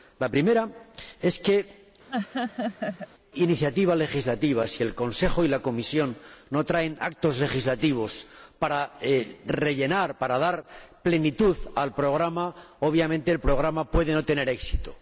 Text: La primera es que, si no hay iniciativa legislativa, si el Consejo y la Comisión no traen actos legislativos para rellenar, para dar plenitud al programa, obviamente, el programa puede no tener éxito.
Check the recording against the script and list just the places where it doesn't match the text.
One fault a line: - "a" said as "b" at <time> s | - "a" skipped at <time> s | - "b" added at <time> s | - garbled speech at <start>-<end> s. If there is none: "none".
- "si no hay" skipped at 1.8 s